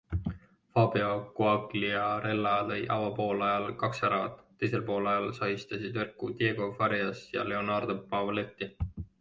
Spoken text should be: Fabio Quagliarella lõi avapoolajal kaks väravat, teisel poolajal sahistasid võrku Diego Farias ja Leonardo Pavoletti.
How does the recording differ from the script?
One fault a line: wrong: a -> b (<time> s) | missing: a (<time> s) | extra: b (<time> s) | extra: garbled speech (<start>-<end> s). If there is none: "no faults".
no faults